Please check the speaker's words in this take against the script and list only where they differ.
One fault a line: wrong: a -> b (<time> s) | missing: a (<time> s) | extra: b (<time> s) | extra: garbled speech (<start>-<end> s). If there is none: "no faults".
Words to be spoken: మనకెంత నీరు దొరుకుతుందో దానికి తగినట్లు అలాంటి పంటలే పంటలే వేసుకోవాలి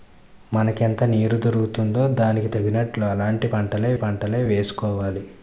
no faults